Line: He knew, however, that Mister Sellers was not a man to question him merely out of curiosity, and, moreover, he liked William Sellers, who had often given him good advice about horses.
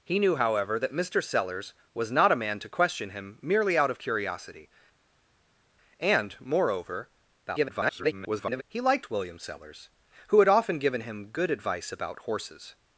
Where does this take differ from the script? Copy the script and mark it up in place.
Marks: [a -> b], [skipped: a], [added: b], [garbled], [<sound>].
He knew, however, that Mister Sellers was not a man to question him merely out of curiosity, and, moreover, [garbled] he liked William Sellers, who had often given him good advice about horses.